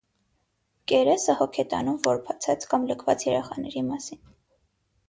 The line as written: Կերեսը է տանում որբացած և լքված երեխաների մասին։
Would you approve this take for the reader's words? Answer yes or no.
no